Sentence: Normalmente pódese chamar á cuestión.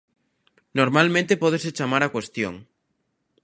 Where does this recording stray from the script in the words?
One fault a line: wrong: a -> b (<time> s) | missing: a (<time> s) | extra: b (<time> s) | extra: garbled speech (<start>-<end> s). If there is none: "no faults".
no faults